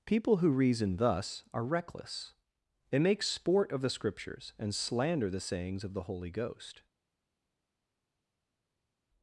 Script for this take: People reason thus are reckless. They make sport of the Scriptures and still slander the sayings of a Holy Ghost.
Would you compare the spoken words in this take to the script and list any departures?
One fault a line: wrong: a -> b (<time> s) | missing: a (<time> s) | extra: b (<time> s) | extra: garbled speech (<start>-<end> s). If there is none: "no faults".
extra: who (0.4 s)
missing: still (4.8 s)
wrong: a -> the (5.9 s)